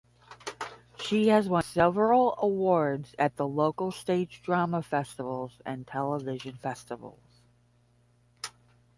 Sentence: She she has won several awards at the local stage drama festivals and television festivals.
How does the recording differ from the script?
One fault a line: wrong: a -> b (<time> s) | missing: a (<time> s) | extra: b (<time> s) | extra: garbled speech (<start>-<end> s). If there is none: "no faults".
missing: she (1.3 s)